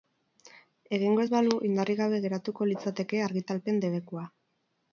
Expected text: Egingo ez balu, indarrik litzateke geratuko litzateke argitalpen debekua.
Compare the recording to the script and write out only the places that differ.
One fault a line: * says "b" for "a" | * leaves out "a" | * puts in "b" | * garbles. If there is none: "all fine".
* says "gabe" for "litzateke"